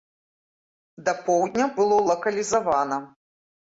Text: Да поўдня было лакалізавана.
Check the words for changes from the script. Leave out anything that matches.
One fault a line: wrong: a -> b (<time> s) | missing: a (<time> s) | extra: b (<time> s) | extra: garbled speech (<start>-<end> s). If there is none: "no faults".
no faults